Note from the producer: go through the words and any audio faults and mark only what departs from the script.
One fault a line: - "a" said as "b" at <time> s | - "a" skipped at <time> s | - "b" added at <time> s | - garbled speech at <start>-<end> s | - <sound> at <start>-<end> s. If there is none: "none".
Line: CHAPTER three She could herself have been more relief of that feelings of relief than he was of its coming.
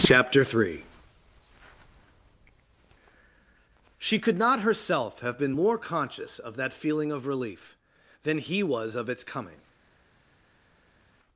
- "not" added at 4.4 s
- "relief" said as "conscious" at 5.8 s
- "feelings" said as "feeling" at 6.7 s